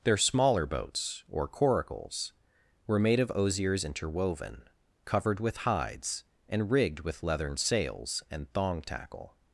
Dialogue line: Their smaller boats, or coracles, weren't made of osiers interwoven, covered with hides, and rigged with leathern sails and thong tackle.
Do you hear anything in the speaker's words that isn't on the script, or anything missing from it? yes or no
yes